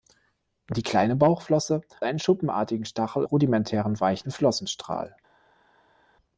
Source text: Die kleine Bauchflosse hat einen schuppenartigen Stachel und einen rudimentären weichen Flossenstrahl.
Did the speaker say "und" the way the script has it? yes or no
no